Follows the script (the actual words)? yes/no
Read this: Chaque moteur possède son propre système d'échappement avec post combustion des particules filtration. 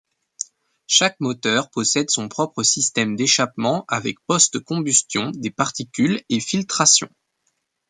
no